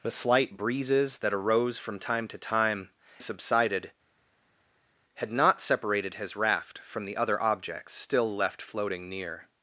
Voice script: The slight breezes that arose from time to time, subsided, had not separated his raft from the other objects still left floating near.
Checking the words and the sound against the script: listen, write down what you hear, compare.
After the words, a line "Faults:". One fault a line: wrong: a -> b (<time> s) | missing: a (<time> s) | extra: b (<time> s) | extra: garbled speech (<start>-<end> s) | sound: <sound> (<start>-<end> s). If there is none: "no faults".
The slight breezes that arose from time to time, subsided, had not separated his raft from the other objects still left floating near.
Faults:
no faults